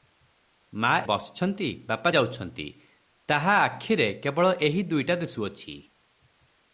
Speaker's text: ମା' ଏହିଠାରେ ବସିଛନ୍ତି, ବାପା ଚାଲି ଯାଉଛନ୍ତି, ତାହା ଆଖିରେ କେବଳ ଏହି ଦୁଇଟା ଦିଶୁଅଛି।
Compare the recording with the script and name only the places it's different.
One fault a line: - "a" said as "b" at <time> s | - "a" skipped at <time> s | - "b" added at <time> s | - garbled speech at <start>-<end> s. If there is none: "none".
- "ଏହିଠାରେ" skipped at 1.0 s
- "ଚାଲି" skipped at 2.1 s